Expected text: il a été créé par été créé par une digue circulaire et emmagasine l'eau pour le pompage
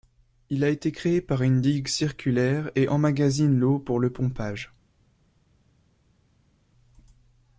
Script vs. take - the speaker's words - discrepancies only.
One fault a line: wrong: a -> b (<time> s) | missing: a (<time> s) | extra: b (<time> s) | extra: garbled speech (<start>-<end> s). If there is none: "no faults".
missing: été créé par (1.4 s)